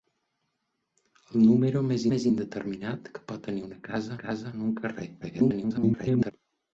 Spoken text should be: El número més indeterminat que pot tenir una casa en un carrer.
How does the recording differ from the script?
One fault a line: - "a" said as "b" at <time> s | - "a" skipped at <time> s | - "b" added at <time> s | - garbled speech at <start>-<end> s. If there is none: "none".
- "més" added at 2.1 s
- "casa" added at 4.2 s
- garbled speech at 5.2-6.3 s